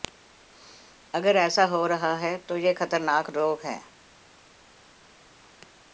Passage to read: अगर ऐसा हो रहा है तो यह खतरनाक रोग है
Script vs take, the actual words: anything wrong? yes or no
no